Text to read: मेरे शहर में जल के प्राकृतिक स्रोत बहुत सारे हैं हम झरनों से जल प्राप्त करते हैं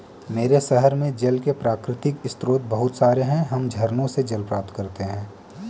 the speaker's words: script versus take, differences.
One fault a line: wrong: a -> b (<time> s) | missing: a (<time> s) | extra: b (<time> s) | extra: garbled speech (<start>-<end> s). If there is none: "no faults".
no faults